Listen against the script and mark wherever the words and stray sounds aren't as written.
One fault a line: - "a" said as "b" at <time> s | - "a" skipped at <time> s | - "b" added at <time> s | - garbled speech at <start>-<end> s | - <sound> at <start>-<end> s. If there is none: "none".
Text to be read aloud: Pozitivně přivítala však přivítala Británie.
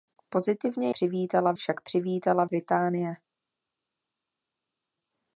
none